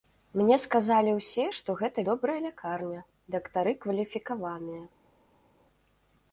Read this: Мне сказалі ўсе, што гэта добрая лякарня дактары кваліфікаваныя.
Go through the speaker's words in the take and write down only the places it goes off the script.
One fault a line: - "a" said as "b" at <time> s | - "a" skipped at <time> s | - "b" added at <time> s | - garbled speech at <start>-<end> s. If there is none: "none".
none